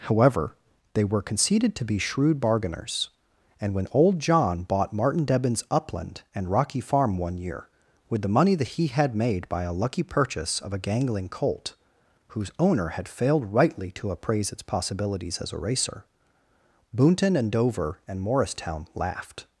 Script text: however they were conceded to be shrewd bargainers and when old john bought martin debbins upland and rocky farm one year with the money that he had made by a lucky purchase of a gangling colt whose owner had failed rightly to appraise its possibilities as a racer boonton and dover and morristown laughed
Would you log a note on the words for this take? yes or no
no